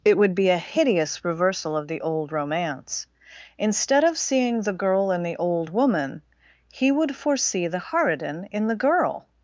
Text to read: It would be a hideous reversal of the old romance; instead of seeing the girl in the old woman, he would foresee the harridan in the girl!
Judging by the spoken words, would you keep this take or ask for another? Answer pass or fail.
pass